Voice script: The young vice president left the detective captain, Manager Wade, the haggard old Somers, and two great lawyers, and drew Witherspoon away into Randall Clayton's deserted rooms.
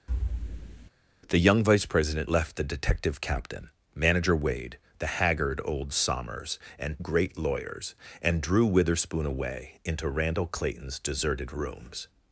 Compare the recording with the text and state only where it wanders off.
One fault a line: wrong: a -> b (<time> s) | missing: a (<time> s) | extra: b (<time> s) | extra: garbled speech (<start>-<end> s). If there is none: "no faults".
missing: two (7.0 s)